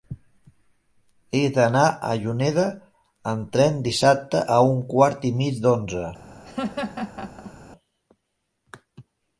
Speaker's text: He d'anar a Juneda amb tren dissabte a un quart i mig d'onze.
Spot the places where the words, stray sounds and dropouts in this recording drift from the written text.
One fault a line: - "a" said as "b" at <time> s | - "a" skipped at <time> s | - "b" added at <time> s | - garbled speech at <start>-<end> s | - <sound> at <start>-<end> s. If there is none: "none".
- laugh at 6.4-7.5 s